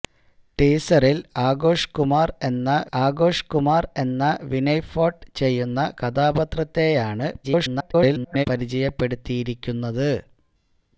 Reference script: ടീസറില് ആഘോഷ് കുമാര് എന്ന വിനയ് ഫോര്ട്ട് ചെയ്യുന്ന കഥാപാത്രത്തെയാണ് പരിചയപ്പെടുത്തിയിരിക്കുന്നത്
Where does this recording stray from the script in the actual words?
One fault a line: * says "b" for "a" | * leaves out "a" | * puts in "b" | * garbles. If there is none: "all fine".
* puts in "ആഘോഷ് കുമാര് എന്ന"
* garbles